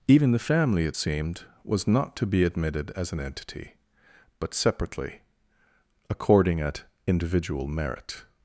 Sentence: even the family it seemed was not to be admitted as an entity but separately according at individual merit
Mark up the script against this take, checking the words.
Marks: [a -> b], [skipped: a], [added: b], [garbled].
even the family it seemed was not to be admitted as an entity but separately according at individual merit